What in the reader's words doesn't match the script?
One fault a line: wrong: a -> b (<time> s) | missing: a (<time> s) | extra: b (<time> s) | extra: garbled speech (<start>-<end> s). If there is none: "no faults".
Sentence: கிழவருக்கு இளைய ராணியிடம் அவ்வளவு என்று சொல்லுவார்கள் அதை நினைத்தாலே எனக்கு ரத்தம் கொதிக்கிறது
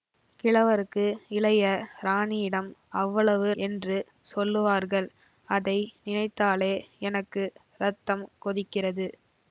no faults